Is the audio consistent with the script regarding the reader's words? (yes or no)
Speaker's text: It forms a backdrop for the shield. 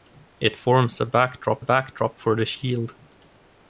no